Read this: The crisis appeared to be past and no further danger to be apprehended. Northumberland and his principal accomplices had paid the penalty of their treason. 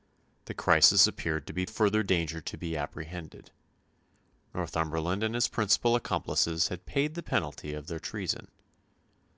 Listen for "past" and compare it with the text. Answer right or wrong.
wrong